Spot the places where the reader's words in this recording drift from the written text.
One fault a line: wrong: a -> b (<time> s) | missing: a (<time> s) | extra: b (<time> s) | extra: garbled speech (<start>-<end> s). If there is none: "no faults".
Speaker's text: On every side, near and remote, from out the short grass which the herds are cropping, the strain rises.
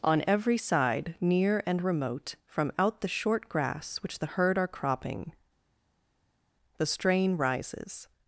wrong: herds -> herd (4.3 s)